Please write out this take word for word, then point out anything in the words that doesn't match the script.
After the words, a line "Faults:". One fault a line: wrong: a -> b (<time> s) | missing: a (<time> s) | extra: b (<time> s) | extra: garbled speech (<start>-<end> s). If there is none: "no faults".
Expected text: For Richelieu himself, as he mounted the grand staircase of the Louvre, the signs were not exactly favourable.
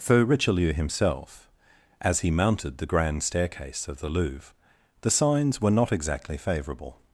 For Richelieu himself, as he mounted the grand staircase of the Louvre, the signs were not exactly favourable.
Faults:
no faults